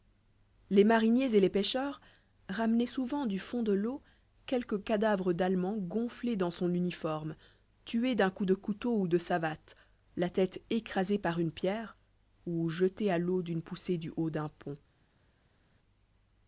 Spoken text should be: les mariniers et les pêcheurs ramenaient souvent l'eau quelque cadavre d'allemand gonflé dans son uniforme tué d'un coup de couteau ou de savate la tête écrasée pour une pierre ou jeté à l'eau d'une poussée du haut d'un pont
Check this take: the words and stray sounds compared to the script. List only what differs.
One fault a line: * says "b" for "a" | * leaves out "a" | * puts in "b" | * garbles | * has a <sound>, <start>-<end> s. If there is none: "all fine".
* puts in "du fond de"
* says "par" for "pour"